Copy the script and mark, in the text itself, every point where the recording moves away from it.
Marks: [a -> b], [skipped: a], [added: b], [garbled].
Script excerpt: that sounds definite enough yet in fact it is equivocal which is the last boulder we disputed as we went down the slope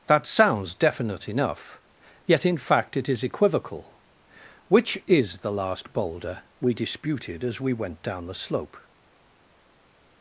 that sounds definite enough yet in fact it is equivocal which is the last boulder we disputed as we went down the slope